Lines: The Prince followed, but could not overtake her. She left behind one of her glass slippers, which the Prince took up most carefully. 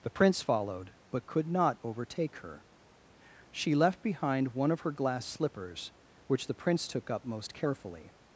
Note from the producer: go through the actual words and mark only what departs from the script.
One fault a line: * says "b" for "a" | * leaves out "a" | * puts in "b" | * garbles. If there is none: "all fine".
all fine